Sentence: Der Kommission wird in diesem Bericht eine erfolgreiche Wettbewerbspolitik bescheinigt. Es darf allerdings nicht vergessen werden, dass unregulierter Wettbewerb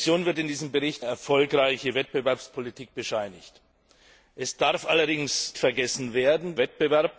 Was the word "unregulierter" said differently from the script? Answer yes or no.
yes